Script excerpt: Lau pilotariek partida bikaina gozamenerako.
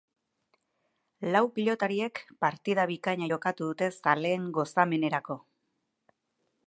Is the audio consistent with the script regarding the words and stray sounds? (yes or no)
no